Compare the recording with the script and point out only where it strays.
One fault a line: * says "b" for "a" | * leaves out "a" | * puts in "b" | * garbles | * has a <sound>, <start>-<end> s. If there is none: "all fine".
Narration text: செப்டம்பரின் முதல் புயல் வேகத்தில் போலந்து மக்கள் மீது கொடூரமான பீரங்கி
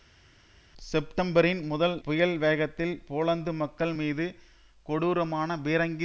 all fine